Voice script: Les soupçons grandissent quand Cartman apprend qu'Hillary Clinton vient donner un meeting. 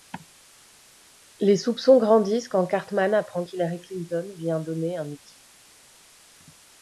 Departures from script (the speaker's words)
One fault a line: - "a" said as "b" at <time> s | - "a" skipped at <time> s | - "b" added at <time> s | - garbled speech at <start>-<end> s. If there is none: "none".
none